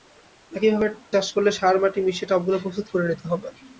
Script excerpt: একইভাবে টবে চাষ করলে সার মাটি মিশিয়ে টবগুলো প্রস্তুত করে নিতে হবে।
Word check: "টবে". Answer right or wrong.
wrong